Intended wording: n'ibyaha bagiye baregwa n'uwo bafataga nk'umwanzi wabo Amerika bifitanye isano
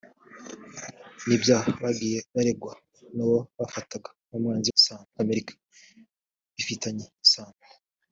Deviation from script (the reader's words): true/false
true